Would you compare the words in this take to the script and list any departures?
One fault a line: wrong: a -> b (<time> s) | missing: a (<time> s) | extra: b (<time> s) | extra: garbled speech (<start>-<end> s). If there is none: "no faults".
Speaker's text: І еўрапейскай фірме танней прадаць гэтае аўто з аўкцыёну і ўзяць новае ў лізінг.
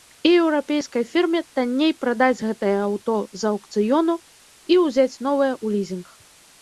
no faults